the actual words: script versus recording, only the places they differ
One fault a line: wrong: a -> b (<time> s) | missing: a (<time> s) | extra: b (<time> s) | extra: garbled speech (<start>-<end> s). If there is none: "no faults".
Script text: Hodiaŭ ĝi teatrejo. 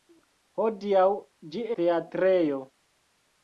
no faults